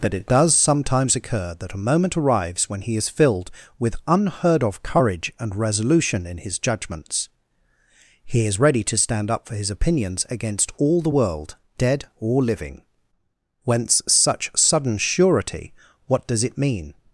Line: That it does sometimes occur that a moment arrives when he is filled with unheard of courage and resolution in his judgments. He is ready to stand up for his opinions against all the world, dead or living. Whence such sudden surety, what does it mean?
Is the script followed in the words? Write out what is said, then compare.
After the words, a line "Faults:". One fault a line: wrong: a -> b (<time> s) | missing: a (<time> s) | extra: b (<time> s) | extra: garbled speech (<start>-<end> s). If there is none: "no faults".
That it does sometimes occur that a moment arrives when he is filled with unheard of courage and resolution in his judgments. He is ready to stand up for his opinions against all the world, dead or living. Whence such sudden surety, what does it mean?
Faults:
no faults